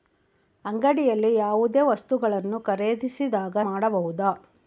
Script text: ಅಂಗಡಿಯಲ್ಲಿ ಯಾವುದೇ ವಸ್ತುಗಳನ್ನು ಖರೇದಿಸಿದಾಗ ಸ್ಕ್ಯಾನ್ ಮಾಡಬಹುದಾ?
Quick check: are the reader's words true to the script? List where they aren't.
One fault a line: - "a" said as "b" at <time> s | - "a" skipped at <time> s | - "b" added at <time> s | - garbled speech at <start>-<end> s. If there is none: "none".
- "ಸ್ಕ್ಯಾನ್" skipped at 3.6 s